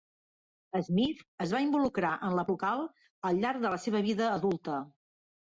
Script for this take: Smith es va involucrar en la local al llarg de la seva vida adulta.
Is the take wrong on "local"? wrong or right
right